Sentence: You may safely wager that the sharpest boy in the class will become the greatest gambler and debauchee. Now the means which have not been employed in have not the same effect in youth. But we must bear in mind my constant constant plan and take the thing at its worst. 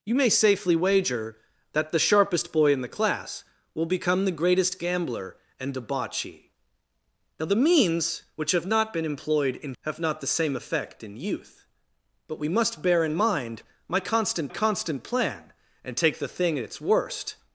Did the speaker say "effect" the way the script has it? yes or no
yes